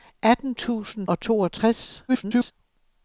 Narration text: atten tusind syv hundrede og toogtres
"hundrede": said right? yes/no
no